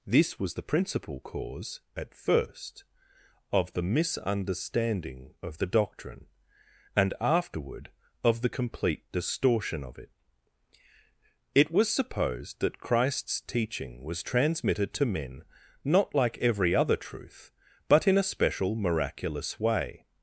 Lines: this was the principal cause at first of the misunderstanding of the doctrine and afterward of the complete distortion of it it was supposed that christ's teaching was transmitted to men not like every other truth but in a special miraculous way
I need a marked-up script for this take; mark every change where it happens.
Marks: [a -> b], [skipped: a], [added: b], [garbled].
this was the principal cause at first of the misunderstanding of the doctrine and afterward of the complete distortion of it it was supposed that christ's teaching was transmitted to men not like every other truth but in a special miraculous way